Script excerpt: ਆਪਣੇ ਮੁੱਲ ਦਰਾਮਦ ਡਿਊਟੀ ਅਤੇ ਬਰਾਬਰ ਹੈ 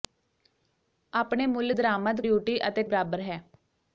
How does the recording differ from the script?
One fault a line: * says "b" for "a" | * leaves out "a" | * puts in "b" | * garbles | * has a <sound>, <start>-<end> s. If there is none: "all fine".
all fine